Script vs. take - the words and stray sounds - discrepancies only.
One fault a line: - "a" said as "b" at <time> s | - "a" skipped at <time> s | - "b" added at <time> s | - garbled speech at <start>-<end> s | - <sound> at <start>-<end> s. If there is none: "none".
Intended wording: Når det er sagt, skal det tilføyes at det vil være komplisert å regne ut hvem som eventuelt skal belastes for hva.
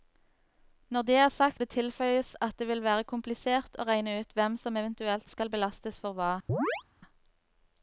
- "skal" skipped at 1.6 s
- chirp at 6.5-6.8 s